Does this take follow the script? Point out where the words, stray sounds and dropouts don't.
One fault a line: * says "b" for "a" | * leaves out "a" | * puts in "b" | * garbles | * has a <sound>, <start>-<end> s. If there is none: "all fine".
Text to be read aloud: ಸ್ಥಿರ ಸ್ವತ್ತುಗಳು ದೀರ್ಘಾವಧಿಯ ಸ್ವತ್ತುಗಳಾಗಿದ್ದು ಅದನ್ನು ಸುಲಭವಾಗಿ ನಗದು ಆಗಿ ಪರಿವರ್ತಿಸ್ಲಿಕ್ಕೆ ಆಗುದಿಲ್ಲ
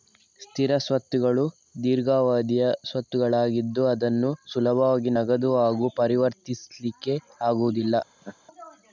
* has a laugh, 8.2-8.4 s